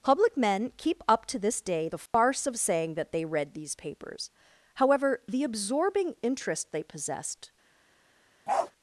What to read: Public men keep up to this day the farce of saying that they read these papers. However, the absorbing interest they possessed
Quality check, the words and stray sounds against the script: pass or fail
fail